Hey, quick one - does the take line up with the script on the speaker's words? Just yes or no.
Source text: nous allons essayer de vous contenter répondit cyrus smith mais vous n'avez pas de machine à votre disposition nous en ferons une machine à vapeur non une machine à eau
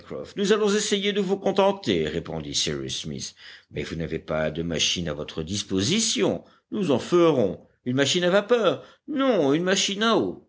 yes